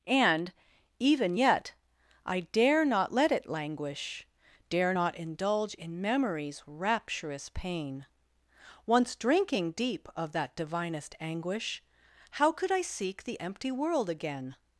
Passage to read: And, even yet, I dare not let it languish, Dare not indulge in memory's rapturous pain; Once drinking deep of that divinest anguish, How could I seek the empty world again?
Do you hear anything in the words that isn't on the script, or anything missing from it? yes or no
no